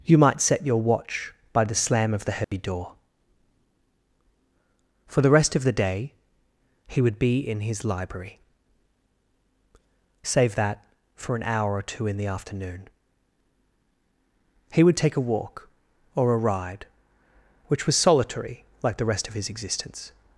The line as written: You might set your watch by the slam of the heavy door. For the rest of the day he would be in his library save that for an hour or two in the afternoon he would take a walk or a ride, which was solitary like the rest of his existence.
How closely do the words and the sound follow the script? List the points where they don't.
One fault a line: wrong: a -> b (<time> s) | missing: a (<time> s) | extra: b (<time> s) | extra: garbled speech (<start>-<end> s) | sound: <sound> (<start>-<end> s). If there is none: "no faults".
sound: dropout (2.4-2.5 s)